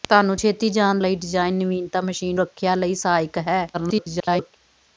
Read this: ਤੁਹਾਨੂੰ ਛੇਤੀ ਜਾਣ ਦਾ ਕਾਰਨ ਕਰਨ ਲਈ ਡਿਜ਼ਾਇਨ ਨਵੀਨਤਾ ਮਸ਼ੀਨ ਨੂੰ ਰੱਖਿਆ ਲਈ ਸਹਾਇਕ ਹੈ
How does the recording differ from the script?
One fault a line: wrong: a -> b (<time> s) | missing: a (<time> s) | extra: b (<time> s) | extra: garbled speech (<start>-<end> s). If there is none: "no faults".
missing: ਦਾ ਕਾਰਨ ਕਰਨ (1.0 s)
missing: ਨੂੰ (2.4 s)
extra: garbled speech (3.7-4.6 s)